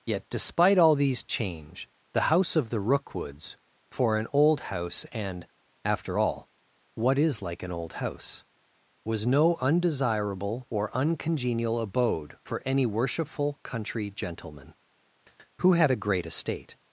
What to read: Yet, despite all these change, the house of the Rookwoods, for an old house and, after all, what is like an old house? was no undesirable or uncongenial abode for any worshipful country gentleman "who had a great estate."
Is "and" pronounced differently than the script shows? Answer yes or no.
no